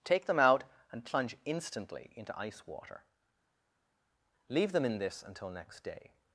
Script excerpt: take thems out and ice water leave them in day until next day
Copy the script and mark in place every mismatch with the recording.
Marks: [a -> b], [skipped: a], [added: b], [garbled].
take [thems -> them] out and [added: plunge instantly into] ice water leave them in [day -> this] until next day